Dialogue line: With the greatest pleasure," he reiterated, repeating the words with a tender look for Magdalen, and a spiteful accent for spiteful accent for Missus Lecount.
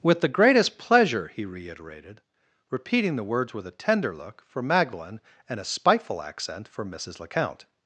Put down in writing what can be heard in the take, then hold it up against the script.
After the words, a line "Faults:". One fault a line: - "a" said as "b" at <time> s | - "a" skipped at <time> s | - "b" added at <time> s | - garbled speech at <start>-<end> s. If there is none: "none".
With the greatest pleasure," he reiterated, repeating the words with a tender look for Magdalen, and a spiteful accent for Missus Lecount.
Faults:
- "spiteful accent for" skipped at 6.8 s